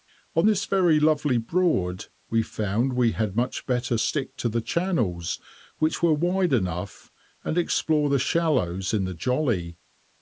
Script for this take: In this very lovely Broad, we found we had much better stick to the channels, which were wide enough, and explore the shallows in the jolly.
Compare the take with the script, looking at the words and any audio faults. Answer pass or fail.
fail